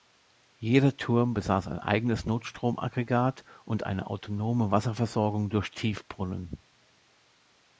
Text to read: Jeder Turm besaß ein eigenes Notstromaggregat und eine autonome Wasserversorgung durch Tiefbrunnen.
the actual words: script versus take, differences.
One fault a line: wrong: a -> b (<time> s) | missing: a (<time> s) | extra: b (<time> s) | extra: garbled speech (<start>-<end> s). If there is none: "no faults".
no faults